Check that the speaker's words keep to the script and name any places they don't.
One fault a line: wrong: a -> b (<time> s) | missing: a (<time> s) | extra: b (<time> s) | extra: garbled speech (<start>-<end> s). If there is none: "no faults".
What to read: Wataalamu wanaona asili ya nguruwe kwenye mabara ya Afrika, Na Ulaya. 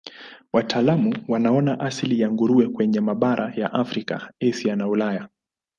extra: Asia (4.5 s)